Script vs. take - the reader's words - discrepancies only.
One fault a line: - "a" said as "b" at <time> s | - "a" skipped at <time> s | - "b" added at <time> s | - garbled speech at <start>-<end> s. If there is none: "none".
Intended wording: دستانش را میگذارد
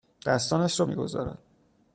none